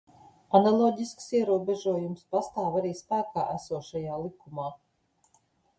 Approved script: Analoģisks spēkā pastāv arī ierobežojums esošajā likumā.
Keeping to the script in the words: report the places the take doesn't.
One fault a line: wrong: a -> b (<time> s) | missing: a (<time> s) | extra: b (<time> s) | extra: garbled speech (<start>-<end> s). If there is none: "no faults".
wrong: spēkā -> ierobežojums (1.4 s)
wrong: ierobežojums -> spēkā (3.0 s)